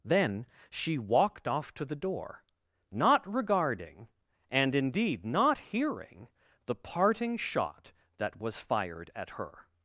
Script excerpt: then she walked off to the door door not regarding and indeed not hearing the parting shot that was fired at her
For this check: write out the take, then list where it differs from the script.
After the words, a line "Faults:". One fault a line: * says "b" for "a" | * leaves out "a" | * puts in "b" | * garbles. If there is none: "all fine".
then she walked off to the door not regarding and indeed not hearing the parting shot that was fired at her
Faults:
* leaves out "door"